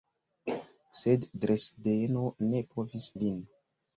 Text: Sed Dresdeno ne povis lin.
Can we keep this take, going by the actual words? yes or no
yes